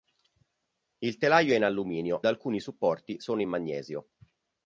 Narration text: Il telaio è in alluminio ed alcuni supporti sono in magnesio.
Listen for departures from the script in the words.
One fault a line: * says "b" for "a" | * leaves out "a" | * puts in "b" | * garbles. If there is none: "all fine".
* leaves out "ed"